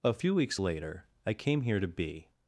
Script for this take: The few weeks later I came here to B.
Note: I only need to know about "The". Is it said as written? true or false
false